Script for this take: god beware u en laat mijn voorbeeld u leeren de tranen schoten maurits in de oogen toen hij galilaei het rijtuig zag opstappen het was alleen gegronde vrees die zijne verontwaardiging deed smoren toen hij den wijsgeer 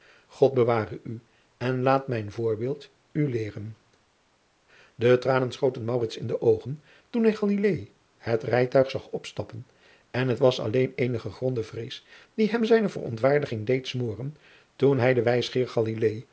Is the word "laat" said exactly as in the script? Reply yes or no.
yes